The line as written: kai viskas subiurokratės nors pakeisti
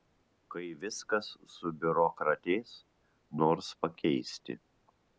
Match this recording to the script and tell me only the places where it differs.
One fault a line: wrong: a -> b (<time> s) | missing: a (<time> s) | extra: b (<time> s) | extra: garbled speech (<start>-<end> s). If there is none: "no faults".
no faults